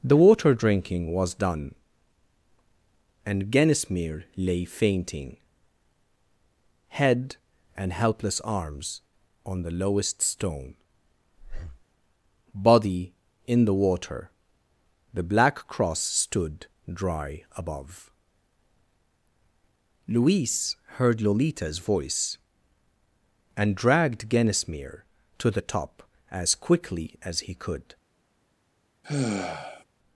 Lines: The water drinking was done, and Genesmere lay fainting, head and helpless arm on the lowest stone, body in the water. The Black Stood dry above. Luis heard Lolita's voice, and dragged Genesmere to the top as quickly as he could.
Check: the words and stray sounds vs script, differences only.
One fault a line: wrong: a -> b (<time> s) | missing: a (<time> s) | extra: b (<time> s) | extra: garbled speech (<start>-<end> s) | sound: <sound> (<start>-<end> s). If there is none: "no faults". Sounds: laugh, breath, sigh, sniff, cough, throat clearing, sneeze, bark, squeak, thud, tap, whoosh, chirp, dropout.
wrong: arm -> arms (8.4 s)
sound: breath (11.4-11.8 s)
extra: Cross (15.7 s)
sound: sigh (29.0-29.8 s)